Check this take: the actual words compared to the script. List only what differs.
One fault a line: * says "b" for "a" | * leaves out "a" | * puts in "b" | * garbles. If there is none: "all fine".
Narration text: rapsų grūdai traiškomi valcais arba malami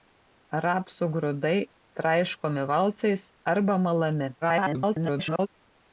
* garbles